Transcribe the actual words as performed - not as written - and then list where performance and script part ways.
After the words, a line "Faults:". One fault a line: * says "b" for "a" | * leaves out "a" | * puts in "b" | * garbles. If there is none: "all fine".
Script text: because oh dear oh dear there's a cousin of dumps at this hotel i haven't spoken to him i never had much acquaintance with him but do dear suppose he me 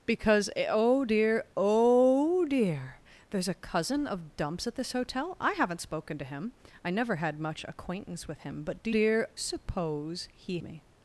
because oh dear oh dear there's a cousin of dumps at this hotel i haven't spoken to him i never had much acquaintance with him but do dear suppose he me
Faults:
all fine